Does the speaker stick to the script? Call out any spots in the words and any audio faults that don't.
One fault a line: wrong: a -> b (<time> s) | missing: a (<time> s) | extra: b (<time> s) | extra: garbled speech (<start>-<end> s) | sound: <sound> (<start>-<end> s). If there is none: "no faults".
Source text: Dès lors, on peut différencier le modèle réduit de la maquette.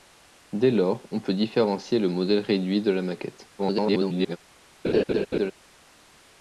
extra: garbled speech (3.6-4.4 s)
sound: laugh (4.8-5.5 s)